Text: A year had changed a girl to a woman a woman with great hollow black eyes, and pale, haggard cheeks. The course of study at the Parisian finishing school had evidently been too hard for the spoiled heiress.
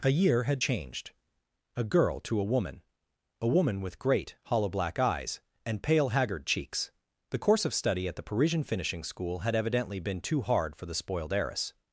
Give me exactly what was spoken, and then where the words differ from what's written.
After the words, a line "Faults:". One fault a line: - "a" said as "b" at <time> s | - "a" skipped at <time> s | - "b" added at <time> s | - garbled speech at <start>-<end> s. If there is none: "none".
A year had changed a girl to a woman a woman with great hollow black eyes, and pale, haggard cheeks. The course of study at the Parisian finishing school had evidently been too hard for the spoiled heiress.
Faults:
none